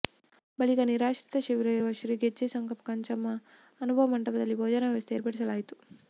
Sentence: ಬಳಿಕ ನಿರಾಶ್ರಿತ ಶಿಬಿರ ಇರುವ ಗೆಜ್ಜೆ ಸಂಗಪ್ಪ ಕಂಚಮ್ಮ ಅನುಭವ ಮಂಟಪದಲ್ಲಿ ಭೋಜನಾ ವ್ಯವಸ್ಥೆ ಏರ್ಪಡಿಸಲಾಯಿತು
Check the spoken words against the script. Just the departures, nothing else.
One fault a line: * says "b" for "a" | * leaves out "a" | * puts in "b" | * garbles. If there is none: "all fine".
* puts in "ಶ್ರೀ"